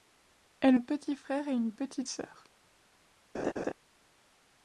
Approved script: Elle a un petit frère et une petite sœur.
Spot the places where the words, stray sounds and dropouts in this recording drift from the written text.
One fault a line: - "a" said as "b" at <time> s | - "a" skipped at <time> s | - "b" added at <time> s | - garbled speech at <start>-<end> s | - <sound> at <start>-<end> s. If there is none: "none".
- "a" skipped at 0.8 s
- laugh at 3.3-3.7 s